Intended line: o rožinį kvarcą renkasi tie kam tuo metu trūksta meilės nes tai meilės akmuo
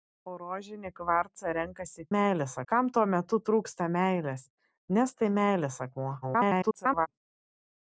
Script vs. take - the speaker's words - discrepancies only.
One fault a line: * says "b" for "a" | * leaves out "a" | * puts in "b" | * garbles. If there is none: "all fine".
* says "meilės" for "tie"
* garbles